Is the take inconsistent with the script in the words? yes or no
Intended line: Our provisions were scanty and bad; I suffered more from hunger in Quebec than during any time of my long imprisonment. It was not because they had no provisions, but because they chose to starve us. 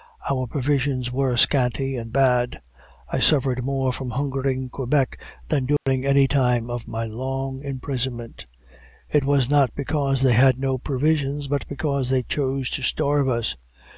no